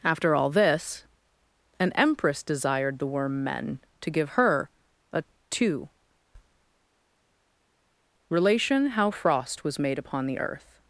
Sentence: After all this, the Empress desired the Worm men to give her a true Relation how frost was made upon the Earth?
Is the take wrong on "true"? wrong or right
wrong